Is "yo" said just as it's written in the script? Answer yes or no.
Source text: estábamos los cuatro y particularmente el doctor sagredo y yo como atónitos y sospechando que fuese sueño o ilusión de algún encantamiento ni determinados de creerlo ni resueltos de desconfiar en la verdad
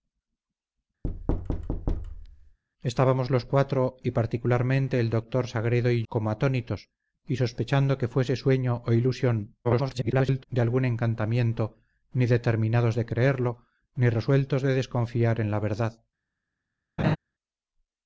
no